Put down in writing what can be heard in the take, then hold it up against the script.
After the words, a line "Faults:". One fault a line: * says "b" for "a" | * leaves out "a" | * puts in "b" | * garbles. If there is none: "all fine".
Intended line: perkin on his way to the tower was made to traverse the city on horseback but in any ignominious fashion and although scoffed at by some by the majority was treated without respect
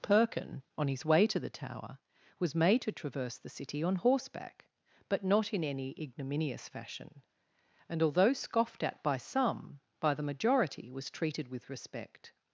perkin on his way to the tower was made to traverse the city on horseback but not in any ignominious fashion and although scoffed at by some by the majority was treated with respect
Faults:
* puts in "not"
* says "with" for "without"